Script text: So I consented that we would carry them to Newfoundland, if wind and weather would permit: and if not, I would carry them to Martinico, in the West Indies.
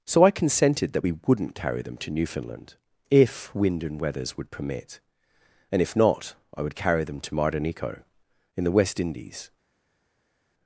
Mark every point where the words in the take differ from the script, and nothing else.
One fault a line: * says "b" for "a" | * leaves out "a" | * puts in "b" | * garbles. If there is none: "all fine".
* says "wouldn't" for "would"
* says "weathers" for "weather"